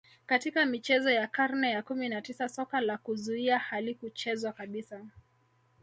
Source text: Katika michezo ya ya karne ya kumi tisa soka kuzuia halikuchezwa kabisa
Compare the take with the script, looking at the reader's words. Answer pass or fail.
fail